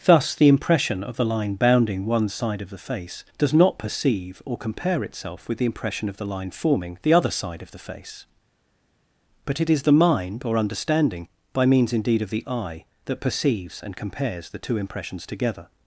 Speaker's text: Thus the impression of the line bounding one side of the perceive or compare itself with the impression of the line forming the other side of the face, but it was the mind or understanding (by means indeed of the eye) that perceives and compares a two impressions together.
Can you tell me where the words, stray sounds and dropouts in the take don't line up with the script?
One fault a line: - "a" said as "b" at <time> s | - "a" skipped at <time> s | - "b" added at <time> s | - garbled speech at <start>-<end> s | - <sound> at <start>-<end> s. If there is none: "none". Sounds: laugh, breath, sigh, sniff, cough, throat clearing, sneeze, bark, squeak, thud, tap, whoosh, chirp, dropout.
- "face does not" added at 2.8 s
- "was" said as "is" at 9.7 s
- "a" said as "the" at 14.5 s